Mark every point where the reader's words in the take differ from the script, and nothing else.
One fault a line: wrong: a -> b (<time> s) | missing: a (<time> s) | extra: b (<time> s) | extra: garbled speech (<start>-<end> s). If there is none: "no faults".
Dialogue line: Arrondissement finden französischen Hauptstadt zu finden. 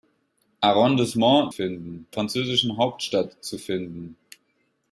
no faults